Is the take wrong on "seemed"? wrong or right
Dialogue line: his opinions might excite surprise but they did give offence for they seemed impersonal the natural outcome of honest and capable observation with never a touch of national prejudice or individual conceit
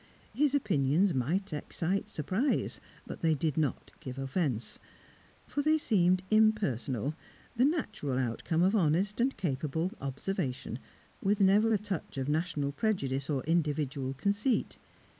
right